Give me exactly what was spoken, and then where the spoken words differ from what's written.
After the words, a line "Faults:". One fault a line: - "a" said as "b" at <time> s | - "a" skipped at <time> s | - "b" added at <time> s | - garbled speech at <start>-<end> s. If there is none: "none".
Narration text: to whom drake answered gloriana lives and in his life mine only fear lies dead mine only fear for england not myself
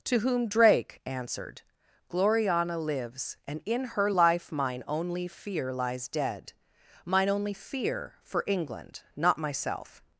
to whom drake answered gloriana lives and in her life mine only fear lies dead mine only fear for england not myself
Faults:
- "his" said as "her" at 3.9 s